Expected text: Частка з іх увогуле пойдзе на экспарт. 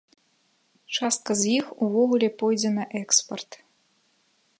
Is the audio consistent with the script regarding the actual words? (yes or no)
yes